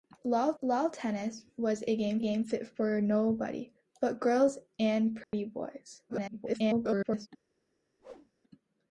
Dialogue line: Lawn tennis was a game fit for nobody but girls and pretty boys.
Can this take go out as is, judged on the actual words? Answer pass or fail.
fail